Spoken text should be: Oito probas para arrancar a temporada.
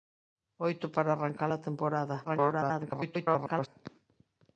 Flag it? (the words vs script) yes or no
yes